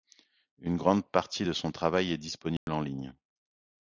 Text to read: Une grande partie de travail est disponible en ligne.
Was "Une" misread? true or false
false